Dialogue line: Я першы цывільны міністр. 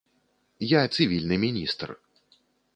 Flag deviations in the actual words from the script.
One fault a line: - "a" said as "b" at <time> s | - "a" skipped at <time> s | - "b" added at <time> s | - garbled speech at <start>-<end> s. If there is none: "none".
- "першы" skipped at 0.8 s